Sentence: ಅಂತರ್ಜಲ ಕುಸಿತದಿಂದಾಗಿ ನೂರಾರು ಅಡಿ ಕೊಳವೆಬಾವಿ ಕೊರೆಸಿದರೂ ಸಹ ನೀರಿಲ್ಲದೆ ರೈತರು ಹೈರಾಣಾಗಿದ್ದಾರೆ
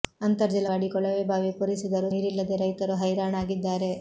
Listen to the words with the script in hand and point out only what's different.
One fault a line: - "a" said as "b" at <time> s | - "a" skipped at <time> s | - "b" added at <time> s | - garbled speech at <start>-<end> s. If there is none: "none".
- "ಕುಸಿತದಿಂದಾಗಿ ನೂರಾರು" skipped at 0.7 s
- "ಸಹ" skipped at 2.1 s